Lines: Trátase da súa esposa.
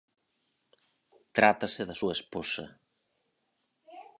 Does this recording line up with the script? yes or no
yes